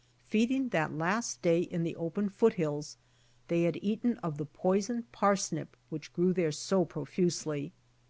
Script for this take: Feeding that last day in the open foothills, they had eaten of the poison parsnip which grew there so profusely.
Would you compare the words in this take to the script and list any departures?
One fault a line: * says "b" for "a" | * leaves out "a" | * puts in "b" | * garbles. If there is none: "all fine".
all fine